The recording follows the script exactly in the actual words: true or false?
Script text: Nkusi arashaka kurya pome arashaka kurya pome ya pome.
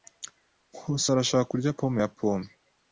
false